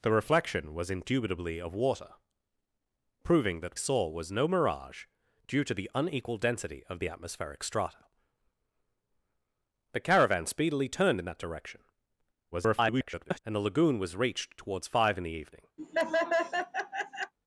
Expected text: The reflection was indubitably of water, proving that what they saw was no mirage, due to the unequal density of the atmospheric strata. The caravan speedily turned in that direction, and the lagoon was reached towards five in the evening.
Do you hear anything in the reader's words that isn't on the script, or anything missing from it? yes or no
yes